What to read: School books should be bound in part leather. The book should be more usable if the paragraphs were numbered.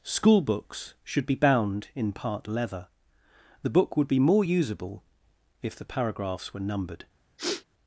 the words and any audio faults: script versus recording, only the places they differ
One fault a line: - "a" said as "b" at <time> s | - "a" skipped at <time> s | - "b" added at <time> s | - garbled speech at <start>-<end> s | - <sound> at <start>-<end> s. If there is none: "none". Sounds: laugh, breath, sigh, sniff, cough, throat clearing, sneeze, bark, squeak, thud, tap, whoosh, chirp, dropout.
- "should" said as "would" at 4.0 s
- sniff at 7.4-7.6 s